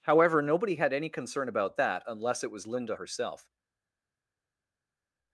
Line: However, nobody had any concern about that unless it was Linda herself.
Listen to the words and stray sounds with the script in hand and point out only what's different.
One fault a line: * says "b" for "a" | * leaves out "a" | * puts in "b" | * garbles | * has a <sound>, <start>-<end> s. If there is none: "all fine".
all fine